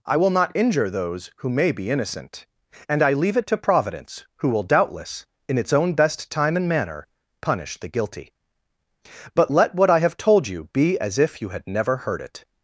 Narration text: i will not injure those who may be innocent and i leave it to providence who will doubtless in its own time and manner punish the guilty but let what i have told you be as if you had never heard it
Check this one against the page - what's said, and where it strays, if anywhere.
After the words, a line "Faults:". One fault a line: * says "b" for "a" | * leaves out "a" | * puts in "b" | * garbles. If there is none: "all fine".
i will not injure those who may be innocent and i leave it to providence who will doubtless in its own best time and manner punish the guilty but let what i have told you be as if you had never heard it
Faults:
* puts in "best"